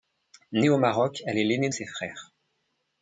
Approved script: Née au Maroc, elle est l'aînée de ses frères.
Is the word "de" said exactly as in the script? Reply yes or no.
no